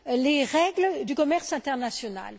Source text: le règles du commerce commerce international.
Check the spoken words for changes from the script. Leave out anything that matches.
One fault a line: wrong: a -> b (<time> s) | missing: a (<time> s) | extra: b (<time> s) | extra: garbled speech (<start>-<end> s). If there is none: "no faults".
wrong: le -> les (0.1 s)
missing: commerce (1.5 s)